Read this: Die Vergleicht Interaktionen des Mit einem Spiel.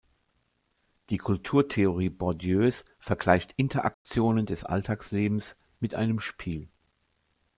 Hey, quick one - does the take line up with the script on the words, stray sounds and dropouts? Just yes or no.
no